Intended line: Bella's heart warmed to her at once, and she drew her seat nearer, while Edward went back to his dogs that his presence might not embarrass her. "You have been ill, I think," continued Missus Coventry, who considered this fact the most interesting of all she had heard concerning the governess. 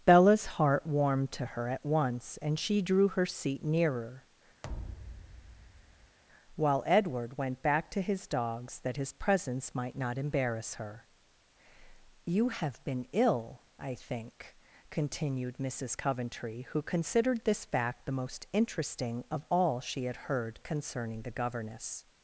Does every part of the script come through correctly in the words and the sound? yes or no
no